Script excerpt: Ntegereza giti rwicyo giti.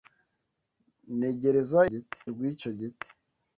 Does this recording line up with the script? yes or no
yes